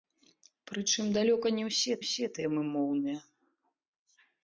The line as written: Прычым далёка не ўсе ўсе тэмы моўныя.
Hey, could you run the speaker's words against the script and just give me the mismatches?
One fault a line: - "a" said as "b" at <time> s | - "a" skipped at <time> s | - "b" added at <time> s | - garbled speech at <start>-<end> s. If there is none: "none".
none